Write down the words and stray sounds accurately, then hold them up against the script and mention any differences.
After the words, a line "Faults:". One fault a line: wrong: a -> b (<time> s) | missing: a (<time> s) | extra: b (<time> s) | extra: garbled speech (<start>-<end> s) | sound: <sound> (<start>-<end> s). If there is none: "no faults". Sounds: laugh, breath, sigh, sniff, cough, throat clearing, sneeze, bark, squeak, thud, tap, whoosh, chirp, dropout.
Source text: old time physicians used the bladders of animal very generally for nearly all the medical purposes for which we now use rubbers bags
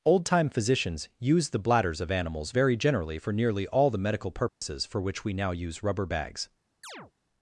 old time physicians used the bladders of animals very generally for nearly all the medical purposes for which we now use rubber bags
Faults:
wrong: animal -> animals (2.1 s)
sound: dropout (4.5-4.6 s)
wrong: rubbers -> rubber (5.8 s)
sound: chirp (6.8-7.1 s)